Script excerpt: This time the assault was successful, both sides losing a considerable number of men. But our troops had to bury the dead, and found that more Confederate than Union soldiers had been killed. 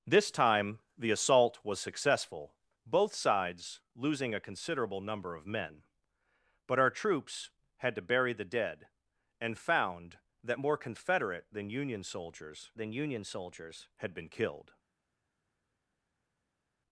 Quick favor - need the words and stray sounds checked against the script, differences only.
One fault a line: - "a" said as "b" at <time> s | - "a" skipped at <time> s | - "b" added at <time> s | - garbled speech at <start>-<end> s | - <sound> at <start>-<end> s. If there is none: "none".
- "than Union soldiers" added at 12.8 s